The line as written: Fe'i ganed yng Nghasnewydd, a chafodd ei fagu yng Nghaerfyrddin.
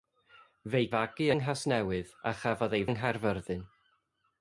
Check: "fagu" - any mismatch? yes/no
yes